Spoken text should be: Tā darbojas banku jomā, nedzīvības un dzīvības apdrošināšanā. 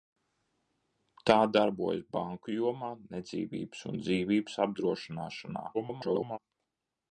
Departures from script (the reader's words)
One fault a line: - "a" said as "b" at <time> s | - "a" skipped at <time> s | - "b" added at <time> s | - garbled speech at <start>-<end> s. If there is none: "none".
- garbled speech at 5.7-6.4 s